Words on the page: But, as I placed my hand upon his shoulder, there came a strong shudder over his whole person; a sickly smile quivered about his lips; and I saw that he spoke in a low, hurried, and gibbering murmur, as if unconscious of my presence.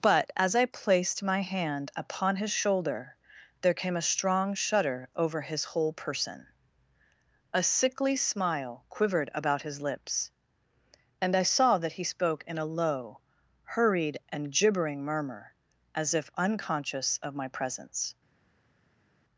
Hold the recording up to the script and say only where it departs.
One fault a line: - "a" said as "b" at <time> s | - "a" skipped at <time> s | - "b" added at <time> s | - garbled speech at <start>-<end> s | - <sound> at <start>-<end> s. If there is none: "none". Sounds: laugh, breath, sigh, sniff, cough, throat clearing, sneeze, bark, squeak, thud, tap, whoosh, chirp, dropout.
none